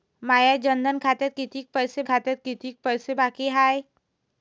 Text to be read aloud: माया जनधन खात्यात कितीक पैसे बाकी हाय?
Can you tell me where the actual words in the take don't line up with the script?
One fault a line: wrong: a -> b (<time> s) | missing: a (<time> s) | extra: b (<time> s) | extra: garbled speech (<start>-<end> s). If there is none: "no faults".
extra: खात्यात कितीक पैसे (2.0 s)